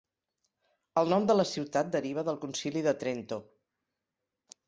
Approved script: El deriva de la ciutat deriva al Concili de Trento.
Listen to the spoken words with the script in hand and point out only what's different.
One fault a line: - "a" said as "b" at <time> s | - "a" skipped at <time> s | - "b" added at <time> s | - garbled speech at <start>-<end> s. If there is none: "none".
- "deriva" said as "nom" at 1.1 s
- "al" said as "del" at 2.3 s